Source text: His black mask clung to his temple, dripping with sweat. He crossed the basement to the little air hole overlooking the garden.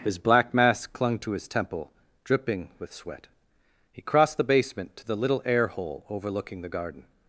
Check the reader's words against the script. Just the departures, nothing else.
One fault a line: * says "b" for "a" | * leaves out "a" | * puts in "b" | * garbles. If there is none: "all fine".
all fine